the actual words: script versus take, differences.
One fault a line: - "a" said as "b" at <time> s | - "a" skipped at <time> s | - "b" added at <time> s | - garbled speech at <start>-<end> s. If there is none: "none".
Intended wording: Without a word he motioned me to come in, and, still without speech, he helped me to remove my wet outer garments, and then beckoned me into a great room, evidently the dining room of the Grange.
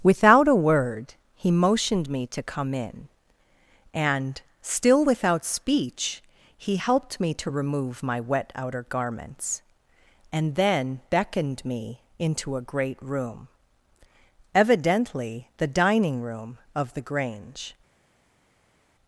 none